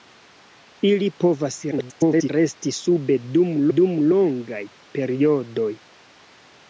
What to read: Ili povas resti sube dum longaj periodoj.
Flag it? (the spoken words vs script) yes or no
yes